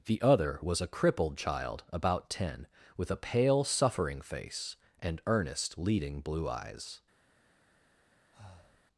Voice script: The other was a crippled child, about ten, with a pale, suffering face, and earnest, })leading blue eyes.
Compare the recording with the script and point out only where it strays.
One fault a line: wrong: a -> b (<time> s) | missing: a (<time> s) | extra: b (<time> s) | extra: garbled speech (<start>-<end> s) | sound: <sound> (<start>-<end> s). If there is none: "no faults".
sound: breath (8.3-8.8 s)